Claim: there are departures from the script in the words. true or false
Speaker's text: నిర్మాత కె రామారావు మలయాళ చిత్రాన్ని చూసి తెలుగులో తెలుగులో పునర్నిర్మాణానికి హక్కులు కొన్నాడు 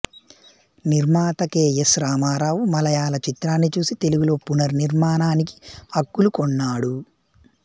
true